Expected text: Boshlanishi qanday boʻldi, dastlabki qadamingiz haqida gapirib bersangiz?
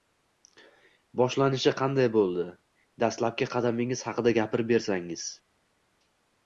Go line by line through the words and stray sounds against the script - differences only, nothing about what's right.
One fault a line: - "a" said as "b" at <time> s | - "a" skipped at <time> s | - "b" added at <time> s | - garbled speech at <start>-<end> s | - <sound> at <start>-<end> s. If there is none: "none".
none